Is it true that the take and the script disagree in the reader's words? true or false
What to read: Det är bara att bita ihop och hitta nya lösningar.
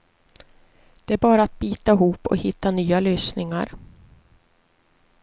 false